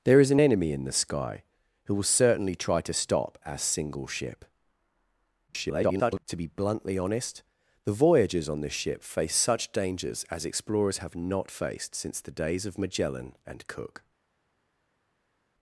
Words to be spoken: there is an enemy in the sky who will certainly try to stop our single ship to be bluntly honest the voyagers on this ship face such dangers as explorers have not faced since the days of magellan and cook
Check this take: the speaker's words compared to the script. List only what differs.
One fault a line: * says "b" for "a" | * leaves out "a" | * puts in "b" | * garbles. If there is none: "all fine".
* garbles